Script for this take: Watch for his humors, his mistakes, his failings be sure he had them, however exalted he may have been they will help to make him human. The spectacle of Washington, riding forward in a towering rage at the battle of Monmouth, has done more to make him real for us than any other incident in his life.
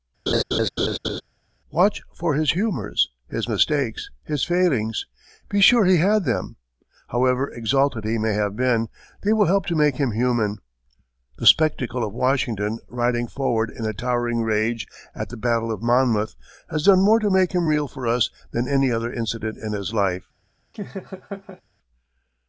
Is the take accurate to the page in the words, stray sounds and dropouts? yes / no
no